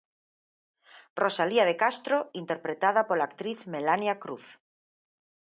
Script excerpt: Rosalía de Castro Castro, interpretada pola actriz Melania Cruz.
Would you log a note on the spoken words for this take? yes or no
yes